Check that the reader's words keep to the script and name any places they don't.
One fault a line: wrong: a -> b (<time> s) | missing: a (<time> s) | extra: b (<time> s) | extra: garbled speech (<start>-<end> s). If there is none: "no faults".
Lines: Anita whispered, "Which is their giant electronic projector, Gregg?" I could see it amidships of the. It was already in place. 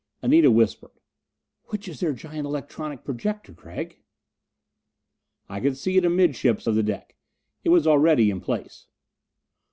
extra: deck (6.8 s)